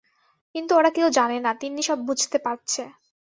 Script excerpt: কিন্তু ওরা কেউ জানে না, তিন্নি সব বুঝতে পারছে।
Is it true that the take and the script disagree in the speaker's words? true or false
false